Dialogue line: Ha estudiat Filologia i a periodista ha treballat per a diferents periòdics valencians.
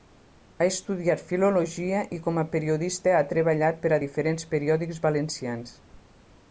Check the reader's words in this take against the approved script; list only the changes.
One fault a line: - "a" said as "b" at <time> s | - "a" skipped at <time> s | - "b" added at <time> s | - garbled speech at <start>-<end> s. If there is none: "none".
- "com" added at 2.3 s